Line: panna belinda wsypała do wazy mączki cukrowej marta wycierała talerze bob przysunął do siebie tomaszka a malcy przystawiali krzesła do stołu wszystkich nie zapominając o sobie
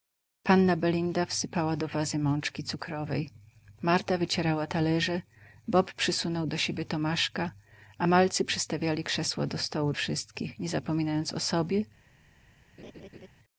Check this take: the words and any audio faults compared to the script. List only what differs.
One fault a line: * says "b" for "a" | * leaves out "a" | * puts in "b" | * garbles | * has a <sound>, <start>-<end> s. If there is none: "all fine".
* has a laugh, 12.8-13.3 s